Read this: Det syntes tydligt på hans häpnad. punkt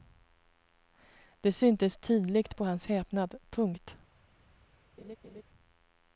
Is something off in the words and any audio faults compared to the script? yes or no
yes